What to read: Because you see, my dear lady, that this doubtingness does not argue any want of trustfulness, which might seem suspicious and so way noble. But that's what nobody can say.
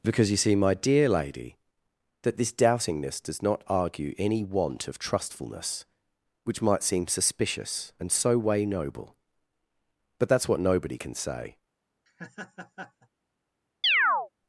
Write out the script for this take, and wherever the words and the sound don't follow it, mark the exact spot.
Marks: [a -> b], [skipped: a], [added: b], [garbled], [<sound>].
Because you see, my dear lady, that this doubtingness does not argue any want of trustfulness, which might seem suspicious and so way noble. But that's what nobody can say. [laugh] [chirp]